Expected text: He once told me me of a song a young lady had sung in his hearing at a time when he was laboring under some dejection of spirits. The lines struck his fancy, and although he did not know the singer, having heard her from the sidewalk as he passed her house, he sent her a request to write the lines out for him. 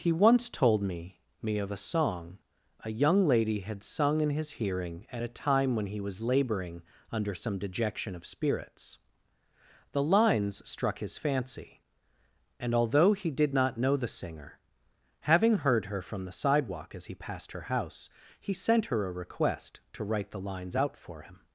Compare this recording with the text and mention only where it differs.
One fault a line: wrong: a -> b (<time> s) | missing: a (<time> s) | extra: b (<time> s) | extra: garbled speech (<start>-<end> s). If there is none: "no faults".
no faults